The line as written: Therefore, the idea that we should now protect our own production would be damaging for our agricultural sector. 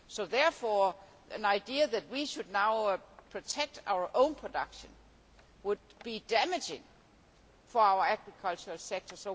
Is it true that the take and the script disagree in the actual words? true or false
false